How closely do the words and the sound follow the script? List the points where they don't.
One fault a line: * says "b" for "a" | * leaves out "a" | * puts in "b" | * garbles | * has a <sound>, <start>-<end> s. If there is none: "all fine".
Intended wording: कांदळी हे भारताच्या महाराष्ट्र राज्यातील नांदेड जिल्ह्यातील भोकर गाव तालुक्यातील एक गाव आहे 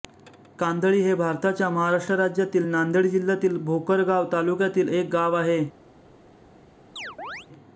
* has a chirp, 7.0-7.5 s